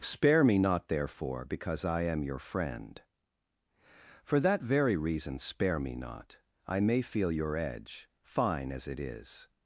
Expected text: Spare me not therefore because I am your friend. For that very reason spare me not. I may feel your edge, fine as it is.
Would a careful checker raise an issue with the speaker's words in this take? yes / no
no